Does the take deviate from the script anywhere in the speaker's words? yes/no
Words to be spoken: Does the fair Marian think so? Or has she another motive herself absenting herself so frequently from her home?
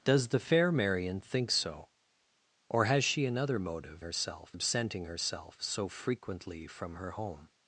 no